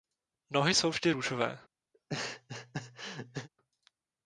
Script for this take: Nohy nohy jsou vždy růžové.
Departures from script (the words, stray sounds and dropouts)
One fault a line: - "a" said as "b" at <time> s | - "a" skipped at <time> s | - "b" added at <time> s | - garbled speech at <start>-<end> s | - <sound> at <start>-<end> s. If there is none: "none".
- "nohy" skipped at 0.8 s
- laugh at 1.9-3.5 s